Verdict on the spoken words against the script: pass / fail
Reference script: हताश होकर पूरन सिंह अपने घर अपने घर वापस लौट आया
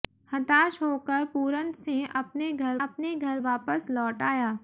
pass